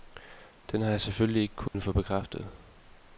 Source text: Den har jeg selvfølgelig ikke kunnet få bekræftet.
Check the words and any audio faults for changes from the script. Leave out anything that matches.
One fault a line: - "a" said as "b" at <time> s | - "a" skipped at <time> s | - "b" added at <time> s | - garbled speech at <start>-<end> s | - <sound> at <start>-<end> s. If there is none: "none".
- dropout at 1.7-1.7 s